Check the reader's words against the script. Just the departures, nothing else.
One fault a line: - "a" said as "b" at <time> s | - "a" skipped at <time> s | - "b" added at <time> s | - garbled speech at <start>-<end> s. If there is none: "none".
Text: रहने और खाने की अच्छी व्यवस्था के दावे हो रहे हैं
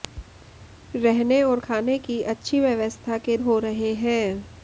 - "दावे" skipped at 3.4 s